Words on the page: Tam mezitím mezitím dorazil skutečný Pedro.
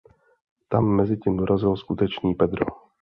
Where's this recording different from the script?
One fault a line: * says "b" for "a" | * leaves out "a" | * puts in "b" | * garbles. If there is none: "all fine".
* leaves out "mezitím"